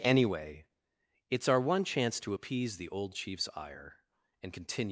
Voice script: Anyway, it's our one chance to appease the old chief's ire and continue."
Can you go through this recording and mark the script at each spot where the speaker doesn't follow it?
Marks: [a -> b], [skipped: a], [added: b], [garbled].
Anyway, it's our one chance to appease the old chief's ire and continue."